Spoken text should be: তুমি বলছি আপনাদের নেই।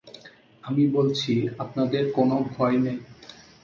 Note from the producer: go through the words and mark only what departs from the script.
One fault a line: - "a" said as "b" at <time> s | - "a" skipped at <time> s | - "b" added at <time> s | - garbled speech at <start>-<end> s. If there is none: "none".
- "তুমি" said as "আমি" at 0.6 s
- "কোনো ভয়" added at 2.1 s